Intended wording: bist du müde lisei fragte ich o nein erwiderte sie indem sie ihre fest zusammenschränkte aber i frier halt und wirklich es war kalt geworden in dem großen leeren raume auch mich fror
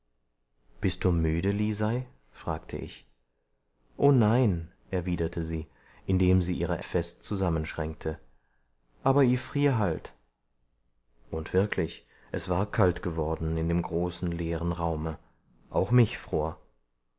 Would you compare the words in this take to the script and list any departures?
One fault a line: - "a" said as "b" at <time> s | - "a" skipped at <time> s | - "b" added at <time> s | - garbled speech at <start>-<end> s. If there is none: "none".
none